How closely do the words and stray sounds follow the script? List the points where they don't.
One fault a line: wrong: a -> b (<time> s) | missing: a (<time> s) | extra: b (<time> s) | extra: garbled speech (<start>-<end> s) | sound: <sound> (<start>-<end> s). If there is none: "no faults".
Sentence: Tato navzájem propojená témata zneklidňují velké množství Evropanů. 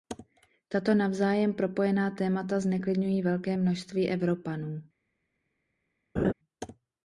sound: laugh (6.2-6.3 s)